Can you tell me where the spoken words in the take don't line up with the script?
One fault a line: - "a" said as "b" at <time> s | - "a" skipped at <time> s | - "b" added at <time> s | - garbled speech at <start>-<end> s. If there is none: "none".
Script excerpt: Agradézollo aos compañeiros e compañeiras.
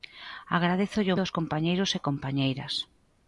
none